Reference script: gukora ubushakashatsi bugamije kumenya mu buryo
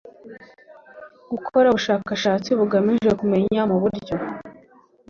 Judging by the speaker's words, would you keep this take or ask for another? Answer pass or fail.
pass